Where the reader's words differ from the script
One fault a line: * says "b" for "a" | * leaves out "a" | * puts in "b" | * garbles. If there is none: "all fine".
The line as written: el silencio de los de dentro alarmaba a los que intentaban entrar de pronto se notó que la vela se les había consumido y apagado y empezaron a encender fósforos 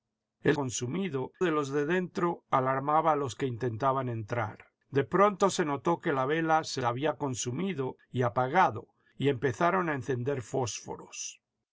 * says "consumido" for "silencio"
* leaves out "les"